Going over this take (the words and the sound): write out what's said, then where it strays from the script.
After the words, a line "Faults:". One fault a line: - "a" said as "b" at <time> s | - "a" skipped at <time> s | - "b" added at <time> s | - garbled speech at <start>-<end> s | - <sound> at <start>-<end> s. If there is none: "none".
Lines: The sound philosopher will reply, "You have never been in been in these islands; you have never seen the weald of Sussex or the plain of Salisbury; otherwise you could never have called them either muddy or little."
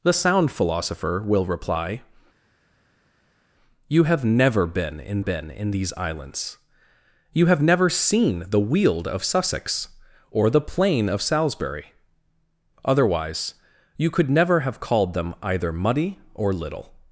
The sound philosopher will reply, "You have never been in been in these islands; you have never seen the weald of Sussex or the plain of Salisbury; otherwise you could never have called them either muddy or little."
Faults:
none